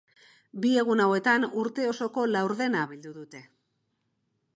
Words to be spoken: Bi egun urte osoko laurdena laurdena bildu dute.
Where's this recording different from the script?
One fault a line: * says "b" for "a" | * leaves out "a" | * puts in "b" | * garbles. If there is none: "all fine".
* puts in "hauetan"
* leaves out "laurdena"